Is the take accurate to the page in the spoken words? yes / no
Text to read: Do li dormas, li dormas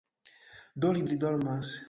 no